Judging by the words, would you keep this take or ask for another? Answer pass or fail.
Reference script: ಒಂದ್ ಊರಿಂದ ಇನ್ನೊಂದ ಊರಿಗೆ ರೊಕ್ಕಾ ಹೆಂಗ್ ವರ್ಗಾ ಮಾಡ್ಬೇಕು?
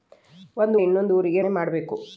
fail